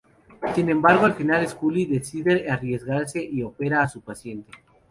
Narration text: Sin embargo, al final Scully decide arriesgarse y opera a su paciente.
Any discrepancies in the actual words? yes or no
no